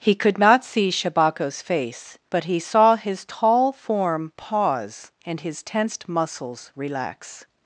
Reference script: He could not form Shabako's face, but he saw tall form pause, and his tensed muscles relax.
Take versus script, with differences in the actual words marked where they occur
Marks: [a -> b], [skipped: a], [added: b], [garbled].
He could not [form -> see] Shabako's face, but he saw [added: his] tall form pause, and his tensed muscles relax.